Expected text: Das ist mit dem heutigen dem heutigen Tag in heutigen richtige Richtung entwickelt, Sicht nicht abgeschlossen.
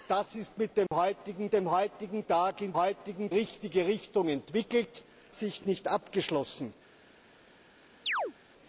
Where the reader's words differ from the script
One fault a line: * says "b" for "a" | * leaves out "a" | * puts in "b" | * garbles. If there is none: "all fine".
all fine